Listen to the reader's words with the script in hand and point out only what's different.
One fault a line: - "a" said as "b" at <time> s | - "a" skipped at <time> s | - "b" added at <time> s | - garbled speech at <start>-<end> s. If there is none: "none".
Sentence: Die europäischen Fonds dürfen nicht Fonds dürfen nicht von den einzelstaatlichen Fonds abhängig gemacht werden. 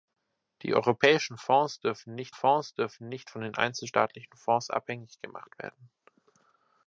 none